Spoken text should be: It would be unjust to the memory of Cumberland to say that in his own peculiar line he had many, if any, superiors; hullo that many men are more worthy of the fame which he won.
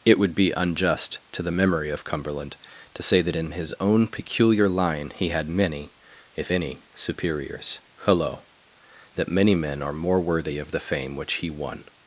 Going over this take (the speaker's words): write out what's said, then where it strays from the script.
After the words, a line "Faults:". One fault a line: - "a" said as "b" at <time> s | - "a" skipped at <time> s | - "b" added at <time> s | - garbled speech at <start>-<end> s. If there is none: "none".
It would be unjust to the memory of Cumberland to say that in his own peculiar line he had many, if any, superiors; hullo that many men are more worthy of the fame which he won.
Faults:
none